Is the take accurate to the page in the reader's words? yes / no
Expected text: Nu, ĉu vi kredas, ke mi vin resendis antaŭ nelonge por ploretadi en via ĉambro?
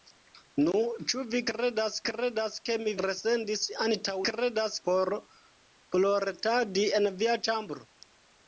no